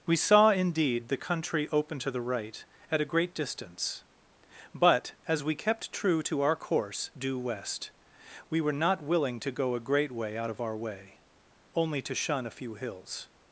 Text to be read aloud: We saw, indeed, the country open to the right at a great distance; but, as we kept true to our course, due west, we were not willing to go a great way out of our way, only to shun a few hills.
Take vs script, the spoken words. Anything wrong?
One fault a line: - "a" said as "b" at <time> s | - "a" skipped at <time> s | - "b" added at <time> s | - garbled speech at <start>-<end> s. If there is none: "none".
none